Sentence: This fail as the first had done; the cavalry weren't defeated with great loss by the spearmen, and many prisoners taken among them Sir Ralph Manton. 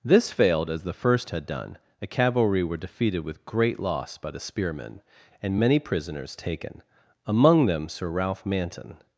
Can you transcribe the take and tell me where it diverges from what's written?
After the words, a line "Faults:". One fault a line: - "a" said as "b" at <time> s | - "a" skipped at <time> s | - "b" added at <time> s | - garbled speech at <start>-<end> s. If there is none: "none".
This failed as the first had done; the cavalry were defeated with great loss by the spearmen, and many prisoners taken among them Sir Ralph Manton.
Faults:
- "fail" said as "failed" at 0.3 s
- "weren't" said as "were" at 2.6 s